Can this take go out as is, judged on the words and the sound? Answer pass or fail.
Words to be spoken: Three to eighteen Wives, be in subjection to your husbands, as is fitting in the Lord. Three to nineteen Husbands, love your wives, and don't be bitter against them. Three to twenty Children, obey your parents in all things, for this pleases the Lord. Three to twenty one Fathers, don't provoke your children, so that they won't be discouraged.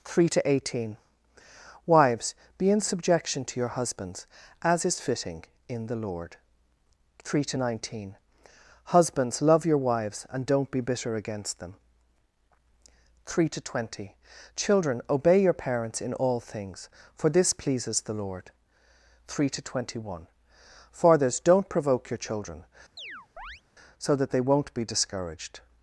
fail